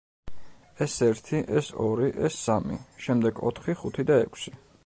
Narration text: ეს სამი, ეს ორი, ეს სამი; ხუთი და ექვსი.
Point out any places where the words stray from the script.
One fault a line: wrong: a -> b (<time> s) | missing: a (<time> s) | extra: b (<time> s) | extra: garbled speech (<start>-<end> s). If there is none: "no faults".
wrong: სამი -> ერთი (1.1 s)
extra: შემდეგ ოთხი (3.1 s)